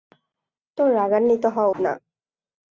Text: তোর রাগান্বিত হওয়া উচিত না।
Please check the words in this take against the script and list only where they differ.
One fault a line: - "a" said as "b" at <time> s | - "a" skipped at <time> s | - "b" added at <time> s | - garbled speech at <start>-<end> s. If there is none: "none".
- "উচিত" skipped at 1.7 s